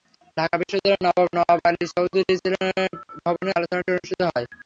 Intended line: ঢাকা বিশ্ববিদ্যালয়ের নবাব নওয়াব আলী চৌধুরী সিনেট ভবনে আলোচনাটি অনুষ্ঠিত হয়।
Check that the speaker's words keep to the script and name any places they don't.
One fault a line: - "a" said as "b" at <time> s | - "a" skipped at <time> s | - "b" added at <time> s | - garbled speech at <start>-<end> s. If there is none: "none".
none